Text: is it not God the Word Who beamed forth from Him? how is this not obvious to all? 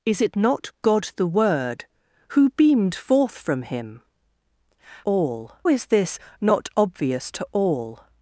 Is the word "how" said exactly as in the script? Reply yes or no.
no